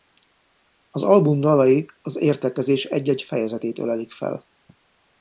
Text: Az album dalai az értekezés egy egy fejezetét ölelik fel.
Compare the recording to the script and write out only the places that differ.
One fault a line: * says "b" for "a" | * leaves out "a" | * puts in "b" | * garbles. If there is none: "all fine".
all fine